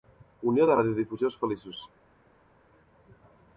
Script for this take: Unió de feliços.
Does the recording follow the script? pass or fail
fail